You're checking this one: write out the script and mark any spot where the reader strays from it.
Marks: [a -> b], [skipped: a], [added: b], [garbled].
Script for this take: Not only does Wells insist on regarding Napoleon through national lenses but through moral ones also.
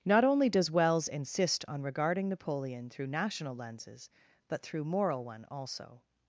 Not only does Wells insist on regarding Napoleon through national lenses but through moral [ones -> one] also.